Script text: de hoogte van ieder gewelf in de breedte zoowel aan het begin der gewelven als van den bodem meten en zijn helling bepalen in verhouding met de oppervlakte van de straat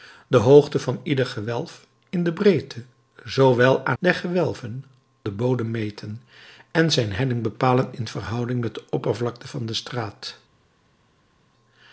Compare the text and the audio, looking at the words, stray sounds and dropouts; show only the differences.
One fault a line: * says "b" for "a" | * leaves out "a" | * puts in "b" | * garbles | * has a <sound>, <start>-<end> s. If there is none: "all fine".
* leaves out "het begin"
* leaves out "als van"